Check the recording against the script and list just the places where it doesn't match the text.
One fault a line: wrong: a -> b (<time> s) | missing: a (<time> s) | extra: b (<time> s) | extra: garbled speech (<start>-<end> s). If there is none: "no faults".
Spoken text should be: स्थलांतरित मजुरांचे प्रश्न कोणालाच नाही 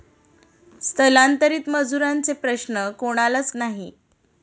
no faults